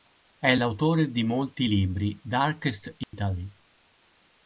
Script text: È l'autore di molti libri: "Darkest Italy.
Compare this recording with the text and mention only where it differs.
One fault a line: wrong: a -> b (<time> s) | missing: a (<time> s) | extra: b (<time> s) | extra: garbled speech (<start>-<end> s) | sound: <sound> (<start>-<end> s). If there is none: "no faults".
sound: dropout (3.0-3.1 s)